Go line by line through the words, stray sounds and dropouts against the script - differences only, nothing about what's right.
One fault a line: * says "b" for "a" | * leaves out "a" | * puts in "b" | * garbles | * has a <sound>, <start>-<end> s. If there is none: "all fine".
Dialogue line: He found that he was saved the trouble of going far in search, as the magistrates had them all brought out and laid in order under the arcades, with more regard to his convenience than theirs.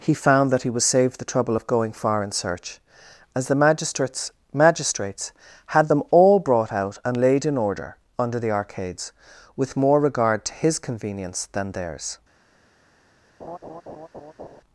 * puts in "magistrates"
* has a laugh, 13.4-14.6 s